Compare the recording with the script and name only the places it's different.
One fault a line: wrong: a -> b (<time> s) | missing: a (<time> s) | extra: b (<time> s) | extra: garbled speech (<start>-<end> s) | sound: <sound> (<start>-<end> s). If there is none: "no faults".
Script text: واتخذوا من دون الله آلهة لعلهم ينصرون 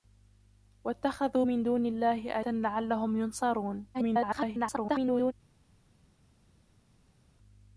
missing: آلهة (2.4 s)
extra: garbled speech (3.9-5.3 s)